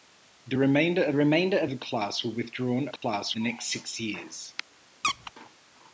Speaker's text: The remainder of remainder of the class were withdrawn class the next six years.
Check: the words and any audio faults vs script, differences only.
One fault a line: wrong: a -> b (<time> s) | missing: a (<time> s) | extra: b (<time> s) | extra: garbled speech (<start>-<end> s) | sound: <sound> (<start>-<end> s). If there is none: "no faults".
sound: dropout (3.0-3.0 s)
sound: squeak (5.0-5.3 s)